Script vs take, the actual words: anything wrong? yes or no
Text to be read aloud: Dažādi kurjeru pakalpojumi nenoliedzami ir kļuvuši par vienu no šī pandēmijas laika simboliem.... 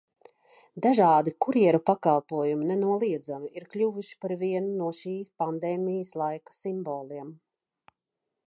no